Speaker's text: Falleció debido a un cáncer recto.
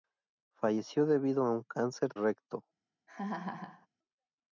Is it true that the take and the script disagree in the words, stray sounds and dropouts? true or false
true